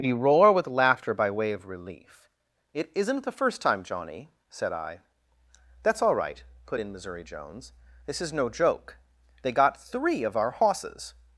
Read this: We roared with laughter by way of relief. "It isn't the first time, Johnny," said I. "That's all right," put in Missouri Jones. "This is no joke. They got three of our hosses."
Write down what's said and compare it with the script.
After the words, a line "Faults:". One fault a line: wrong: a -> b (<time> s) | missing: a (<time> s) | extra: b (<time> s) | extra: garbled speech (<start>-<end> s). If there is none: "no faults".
We roar with laughter by way of relief. "It isn't the first time, Johnny," said I. "That's all right," put in Missouri Jones. "This is no joke. They got three of our hosses."
Faults:
wrong: roared -> roar (0.1 s)